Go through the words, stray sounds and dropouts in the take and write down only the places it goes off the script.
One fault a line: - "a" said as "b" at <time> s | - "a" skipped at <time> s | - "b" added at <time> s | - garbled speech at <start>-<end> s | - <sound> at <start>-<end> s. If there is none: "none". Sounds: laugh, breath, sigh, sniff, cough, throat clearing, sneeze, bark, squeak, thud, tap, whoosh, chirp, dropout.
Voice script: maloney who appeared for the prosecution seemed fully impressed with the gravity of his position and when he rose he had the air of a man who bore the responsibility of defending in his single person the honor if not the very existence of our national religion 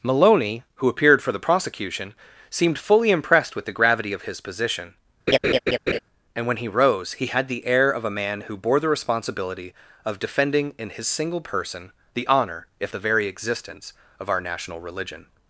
- laugh at 5.3-6.0 s
- "not" skipped at 12.9 s